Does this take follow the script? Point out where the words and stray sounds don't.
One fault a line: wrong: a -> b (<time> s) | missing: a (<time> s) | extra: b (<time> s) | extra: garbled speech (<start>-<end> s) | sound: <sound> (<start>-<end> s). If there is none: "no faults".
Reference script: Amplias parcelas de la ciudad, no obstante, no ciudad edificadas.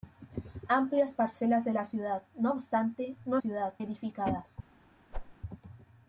sound: whoosh (5.1-5.4 s)